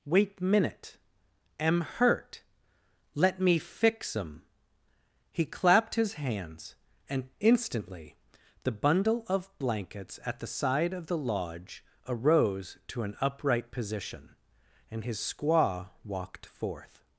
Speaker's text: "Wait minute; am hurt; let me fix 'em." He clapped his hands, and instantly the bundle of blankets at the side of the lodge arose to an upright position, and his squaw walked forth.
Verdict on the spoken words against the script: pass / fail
pass